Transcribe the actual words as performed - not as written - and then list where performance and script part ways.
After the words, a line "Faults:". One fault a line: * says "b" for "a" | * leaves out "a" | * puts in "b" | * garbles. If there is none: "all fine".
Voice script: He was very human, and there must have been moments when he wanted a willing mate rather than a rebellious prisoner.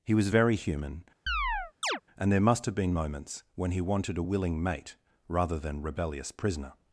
He was very human, and there must have been moments when he wanted a willing mate rather than rebellious prisoner.
Faults:
* leaves out "a"